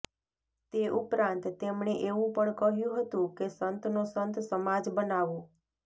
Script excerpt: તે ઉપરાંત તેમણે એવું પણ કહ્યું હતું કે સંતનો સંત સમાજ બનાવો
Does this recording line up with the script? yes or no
yes